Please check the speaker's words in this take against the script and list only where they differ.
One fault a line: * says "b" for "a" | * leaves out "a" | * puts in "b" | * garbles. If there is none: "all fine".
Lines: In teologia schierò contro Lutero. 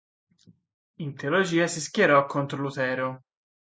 * puts in "si"